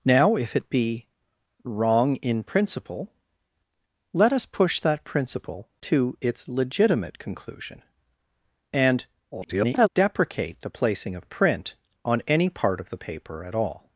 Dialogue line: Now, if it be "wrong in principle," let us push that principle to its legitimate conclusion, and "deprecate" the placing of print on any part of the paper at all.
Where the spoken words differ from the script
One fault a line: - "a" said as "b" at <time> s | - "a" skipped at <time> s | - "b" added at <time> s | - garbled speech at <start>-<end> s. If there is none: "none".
- garbled speech at 9.3-9.9 s